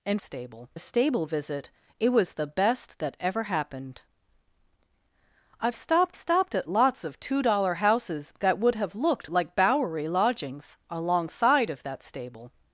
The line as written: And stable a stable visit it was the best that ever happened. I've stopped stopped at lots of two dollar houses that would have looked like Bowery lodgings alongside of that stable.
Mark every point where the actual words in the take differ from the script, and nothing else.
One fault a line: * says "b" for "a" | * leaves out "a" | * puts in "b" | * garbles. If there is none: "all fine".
all fine